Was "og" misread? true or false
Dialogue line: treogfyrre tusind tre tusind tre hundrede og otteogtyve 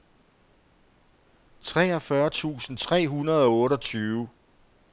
false